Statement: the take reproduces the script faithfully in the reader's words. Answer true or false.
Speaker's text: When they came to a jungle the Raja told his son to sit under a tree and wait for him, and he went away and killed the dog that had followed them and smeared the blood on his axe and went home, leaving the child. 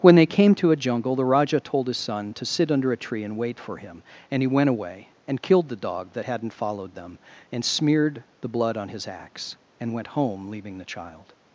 false